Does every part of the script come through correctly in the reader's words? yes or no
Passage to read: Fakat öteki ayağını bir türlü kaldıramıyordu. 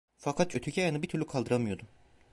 yes